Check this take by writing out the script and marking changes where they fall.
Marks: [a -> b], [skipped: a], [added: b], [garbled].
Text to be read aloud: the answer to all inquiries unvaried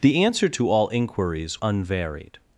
the answer to all inquiries unvaried